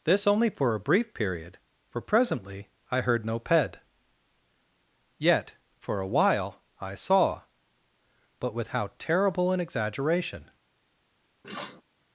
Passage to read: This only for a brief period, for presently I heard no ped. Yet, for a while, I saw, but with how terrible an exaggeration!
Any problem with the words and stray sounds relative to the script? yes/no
yes